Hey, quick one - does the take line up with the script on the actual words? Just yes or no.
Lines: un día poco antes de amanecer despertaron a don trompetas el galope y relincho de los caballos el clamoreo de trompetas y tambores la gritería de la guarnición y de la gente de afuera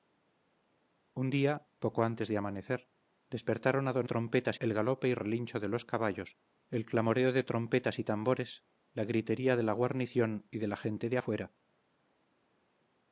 yes